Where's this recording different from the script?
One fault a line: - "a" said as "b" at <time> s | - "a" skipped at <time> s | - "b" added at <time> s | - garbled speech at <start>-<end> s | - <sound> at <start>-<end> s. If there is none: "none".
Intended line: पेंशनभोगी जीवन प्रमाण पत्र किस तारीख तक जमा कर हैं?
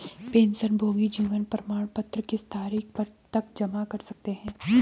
- "सकते" added at 4.0 s